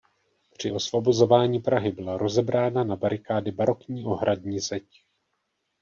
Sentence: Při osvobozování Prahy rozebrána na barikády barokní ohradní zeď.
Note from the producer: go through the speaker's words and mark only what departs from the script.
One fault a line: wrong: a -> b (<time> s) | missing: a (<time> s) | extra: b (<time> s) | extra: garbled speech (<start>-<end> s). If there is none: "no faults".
extra: byla (1.9 s)